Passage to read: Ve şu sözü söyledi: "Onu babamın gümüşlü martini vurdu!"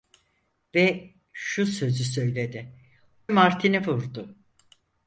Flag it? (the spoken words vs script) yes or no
yes